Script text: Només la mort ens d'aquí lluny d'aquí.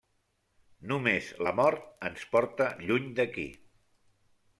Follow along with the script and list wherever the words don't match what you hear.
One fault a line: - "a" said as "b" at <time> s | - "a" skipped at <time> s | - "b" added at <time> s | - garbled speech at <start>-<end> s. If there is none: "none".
- "d'aquí" said as "porta" at 2.4 s